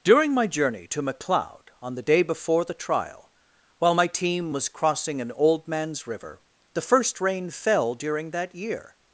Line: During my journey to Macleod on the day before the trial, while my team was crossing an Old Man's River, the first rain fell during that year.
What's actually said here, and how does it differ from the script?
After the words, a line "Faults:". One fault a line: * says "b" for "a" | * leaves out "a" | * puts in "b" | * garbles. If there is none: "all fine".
During my journey to Macleod on the day before the trial, while my team was crossing an Old Man's River, the first rain fell during that year.
Faults:
all fine